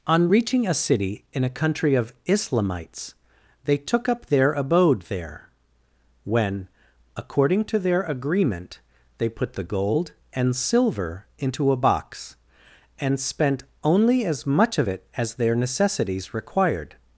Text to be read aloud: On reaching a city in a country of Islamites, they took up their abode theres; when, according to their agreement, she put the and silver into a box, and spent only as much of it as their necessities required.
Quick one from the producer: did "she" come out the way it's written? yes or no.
no